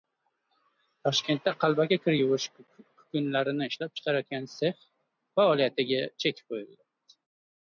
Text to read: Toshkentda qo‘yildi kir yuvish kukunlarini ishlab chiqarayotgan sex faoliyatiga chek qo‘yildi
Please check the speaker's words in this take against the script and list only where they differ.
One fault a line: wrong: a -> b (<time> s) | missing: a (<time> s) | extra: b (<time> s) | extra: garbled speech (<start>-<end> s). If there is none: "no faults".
wrong: qo‘yildi -> qalbaki (1.6 s)